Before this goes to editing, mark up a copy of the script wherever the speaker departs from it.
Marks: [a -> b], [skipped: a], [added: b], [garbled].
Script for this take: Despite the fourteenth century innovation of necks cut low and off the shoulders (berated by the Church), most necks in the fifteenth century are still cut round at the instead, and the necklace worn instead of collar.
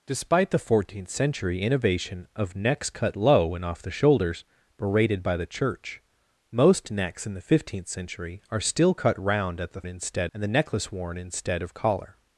Despite the fourteenth century innovation of necks cut low and off the shoulders (berated by the Church), most necks in the fifteenth century are still cut round at the instead, and the necklace worn instead of collar.